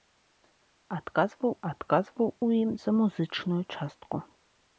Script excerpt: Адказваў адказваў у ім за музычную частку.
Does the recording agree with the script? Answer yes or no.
yes